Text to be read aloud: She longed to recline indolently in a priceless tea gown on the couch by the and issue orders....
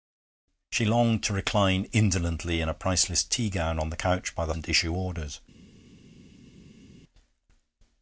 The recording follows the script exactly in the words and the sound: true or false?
true